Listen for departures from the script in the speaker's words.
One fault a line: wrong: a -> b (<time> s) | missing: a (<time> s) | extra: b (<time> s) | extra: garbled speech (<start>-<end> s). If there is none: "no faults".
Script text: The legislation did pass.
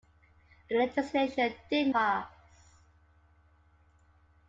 no faults